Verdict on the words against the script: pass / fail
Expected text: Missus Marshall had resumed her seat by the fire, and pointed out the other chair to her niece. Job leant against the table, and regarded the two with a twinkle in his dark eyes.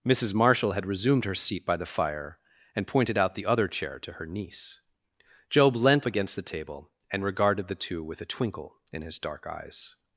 pass